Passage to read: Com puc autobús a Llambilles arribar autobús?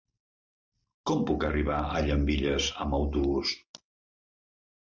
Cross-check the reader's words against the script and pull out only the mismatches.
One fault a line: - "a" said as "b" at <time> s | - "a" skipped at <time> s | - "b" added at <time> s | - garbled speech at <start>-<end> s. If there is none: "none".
- "autobús" said as "arribar" at 1.5 s
- "arribar" said as "amb" at 2.9 s